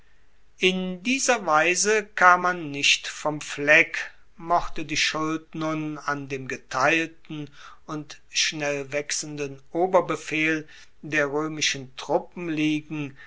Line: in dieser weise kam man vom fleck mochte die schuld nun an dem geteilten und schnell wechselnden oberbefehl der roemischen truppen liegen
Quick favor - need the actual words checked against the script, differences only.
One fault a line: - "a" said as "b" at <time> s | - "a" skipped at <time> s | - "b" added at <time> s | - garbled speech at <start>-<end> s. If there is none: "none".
- "nicht" added at 2.7 s